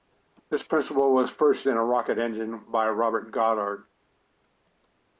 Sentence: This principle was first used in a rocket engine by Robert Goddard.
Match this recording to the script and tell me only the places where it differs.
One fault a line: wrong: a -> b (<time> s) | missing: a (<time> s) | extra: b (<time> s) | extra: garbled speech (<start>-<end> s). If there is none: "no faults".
missing: used (1.7 s)